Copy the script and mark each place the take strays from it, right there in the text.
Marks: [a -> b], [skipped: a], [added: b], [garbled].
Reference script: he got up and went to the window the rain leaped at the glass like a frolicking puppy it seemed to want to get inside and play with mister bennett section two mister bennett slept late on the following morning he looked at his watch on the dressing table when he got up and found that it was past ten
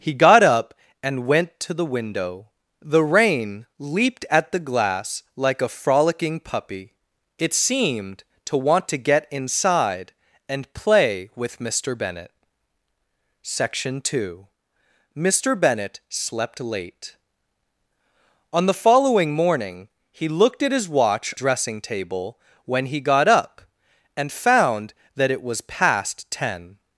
he got up and went to the window the rain leaped at the glass like a frolicking puppy it seemed to want to get inside and play with mister bennett section two mister bennett slept late on the following morning he looked at his watch [skipped: on the] dressing table when he got up and found that it was past ten